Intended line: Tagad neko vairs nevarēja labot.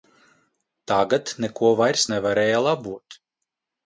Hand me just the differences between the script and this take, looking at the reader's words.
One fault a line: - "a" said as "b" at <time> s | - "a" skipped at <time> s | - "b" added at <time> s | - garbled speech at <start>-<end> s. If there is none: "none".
none